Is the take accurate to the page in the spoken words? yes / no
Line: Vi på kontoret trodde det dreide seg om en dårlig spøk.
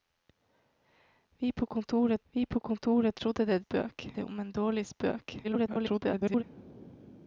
no